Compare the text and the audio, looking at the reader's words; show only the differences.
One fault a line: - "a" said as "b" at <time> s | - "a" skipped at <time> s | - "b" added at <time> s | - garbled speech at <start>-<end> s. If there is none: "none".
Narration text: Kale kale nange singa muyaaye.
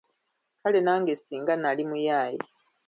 - "kale" skipped at 0.8 s
- "nali" added at 1.6 s